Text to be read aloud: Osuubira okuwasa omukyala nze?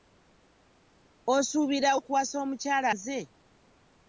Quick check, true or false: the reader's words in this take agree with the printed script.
true